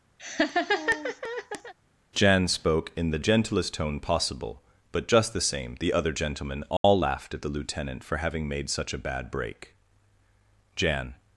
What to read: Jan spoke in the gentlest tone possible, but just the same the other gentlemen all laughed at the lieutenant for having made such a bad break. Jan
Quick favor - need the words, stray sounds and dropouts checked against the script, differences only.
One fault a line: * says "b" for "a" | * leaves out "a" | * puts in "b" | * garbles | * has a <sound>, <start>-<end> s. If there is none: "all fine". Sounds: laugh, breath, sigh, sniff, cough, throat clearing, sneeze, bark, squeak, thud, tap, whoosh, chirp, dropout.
* has a laugh, 0.2-1.7 s
* has a dropout, 6.8-6.8 s